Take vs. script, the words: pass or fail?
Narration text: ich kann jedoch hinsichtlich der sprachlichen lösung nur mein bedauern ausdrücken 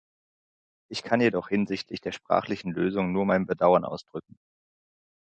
pass